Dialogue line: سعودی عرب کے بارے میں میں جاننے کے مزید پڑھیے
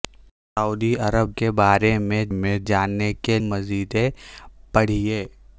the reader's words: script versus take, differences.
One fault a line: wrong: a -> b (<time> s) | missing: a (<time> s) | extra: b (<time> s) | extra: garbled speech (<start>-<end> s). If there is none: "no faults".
no faults